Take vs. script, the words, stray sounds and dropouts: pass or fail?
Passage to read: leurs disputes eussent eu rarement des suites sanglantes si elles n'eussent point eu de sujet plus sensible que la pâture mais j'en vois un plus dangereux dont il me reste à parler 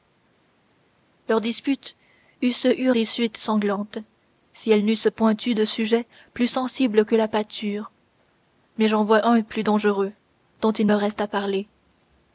fail